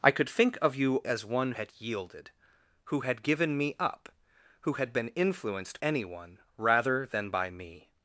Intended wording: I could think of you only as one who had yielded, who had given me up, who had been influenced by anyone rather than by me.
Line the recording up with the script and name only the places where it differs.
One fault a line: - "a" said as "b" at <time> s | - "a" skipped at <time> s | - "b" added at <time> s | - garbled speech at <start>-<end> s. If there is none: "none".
- "only" skipped at 1.0 s
- "who" skipped at 1.5 s
- "by" skipped at 5.8 s